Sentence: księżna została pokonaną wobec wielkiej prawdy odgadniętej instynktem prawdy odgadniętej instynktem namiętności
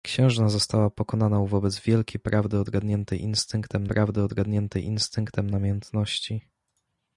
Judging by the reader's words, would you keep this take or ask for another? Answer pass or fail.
pass